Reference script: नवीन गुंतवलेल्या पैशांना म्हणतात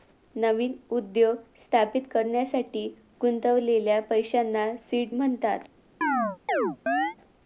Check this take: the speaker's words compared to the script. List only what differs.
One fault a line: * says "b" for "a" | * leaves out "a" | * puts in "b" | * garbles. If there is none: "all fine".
* puts in "उद्योग स्थापित करण्यासाठी"
* puts in "सीड"